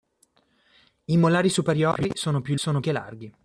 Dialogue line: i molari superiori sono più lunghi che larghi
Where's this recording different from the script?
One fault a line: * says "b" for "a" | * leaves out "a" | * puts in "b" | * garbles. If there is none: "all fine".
* says "sono" for "lunghi"